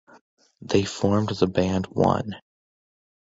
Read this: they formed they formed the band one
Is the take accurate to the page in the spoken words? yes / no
no